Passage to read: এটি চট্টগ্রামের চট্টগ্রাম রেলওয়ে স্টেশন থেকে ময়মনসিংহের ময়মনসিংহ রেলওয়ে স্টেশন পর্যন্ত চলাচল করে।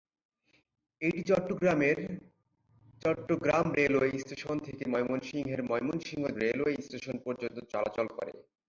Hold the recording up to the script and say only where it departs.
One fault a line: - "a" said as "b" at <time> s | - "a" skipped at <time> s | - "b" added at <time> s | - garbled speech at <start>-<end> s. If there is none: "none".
none